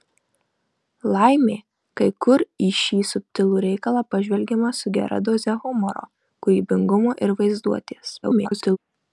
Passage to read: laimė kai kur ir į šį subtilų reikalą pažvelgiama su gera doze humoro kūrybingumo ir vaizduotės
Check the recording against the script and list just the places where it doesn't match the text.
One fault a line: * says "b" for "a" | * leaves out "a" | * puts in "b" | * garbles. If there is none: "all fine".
* leaves out "ir"
* garbles